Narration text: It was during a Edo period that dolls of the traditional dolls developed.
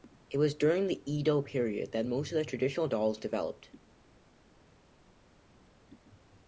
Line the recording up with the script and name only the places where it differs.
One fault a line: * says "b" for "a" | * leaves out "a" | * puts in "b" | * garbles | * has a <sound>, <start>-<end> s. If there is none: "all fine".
* says "the" for "a"
* says "most" for "dolls"